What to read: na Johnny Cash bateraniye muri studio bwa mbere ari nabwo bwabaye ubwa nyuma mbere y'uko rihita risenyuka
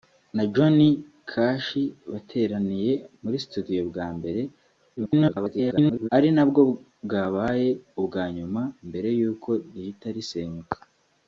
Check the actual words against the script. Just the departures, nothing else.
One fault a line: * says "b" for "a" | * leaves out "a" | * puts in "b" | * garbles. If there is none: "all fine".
* garbles